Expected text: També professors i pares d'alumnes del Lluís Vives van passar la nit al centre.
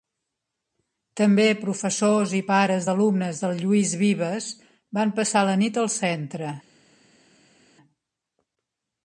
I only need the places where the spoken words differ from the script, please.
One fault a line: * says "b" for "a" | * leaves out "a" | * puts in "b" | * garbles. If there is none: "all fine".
all fine